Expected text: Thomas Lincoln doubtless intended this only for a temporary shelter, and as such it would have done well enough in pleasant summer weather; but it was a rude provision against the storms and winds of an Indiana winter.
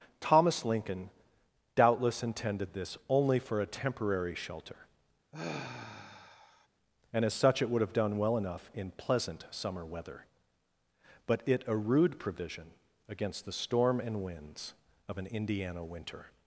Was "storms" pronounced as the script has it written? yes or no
no